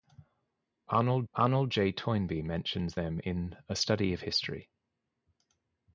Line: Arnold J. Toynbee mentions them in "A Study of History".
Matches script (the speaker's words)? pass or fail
fail